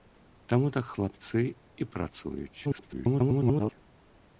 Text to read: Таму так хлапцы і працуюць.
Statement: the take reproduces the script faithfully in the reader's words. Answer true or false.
false